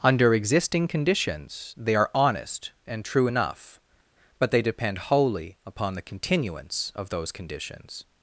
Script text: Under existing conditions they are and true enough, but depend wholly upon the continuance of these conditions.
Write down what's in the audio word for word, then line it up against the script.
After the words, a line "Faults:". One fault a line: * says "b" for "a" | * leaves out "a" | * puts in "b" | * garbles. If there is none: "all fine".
Under existing conditions they are honest and true enough, but they depend wholly upon the continuance of those conditions.
Faults:
* puts in "honest"
* puts in "they"
* says "those" for "these"